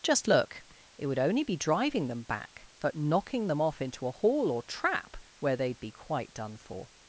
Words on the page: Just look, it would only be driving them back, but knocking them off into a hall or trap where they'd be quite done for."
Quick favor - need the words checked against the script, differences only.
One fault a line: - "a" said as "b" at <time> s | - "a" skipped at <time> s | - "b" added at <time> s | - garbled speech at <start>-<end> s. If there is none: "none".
none